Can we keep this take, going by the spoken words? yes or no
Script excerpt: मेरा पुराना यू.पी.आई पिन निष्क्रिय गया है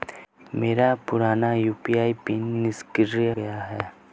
yes